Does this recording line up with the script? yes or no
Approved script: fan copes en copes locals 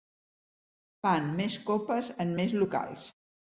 no